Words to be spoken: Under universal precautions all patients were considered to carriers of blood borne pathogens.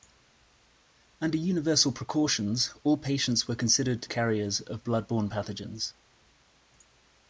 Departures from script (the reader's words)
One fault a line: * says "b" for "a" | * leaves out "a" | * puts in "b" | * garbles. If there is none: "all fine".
all fine